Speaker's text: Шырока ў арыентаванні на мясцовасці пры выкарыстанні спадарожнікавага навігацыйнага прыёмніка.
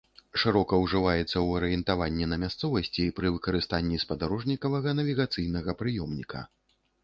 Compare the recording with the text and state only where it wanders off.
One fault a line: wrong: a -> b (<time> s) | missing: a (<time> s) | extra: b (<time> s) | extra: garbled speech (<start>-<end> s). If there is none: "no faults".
extra: ўжываецца (0.8 s)